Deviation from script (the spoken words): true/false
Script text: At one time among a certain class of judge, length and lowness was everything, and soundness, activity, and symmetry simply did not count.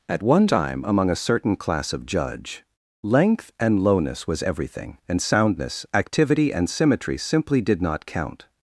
false